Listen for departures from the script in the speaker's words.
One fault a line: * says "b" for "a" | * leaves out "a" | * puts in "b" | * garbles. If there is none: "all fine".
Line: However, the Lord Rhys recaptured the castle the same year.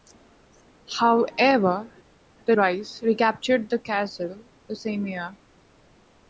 * leaves out "Lord"